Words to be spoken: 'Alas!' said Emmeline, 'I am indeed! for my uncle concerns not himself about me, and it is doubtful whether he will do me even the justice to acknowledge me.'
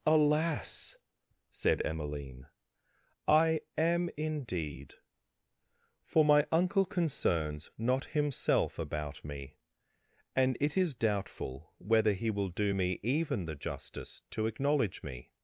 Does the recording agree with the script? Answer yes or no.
yes